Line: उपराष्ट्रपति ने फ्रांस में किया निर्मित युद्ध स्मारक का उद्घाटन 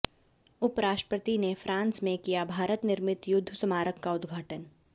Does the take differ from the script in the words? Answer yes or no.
yes